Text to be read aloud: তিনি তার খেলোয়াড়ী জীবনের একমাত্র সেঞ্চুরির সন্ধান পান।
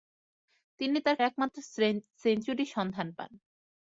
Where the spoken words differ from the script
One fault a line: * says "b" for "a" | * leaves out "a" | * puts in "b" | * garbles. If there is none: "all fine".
* leaves out "খেলোয়াড়ী জীবনের"